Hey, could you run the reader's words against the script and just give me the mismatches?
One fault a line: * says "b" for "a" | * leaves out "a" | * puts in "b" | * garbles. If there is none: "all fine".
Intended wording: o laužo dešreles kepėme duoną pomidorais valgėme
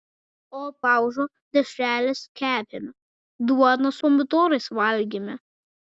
all fine